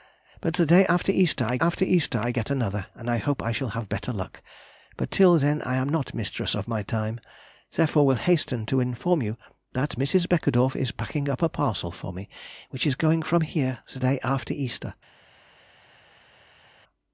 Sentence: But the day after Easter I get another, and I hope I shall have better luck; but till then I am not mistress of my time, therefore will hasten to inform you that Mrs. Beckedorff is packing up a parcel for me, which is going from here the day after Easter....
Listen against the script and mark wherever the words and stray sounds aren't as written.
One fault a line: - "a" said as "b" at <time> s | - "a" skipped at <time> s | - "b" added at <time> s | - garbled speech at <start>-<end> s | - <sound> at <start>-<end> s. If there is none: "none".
- "after Easter I" added at 1.6 s